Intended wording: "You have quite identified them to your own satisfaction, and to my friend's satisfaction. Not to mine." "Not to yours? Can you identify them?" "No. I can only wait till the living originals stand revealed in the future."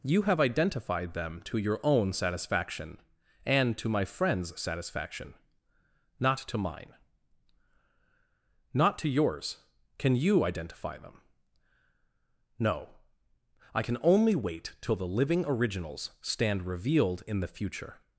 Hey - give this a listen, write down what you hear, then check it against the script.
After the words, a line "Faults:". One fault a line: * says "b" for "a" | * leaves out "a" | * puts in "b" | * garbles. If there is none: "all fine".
"You have identified them to your own satisfaction, and to my friend's satisfaction. Not to mine." "Not to yours? Can you identify them?" "No. I can only wait till the living originals stand revealed in the future."
Faults:
* leaves out "quite"